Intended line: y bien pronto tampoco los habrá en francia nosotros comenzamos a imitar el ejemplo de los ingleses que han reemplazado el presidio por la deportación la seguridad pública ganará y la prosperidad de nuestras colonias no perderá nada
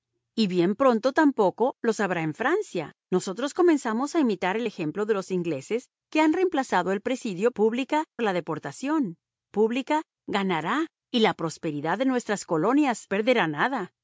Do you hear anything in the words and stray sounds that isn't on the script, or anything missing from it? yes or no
yes